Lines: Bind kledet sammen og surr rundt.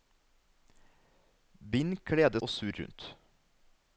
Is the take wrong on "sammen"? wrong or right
wrong